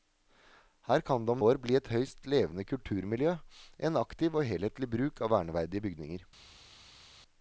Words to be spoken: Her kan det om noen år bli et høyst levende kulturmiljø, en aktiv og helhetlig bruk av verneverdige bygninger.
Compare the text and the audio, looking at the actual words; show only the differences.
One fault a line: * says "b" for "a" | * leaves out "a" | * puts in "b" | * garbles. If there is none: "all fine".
* leaves out "noen"